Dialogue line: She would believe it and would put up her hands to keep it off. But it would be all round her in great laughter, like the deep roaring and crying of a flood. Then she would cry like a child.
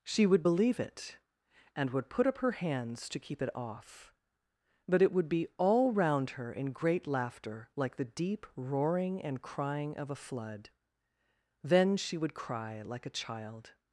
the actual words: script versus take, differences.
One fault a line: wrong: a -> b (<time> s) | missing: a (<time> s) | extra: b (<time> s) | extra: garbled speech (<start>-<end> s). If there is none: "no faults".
no faults